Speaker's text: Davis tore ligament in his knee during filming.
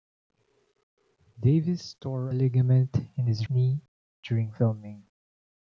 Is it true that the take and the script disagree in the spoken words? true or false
false